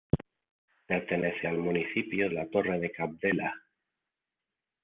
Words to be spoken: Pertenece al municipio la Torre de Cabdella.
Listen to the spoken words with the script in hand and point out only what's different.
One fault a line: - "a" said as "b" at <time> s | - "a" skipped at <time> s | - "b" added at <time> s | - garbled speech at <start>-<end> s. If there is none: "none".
none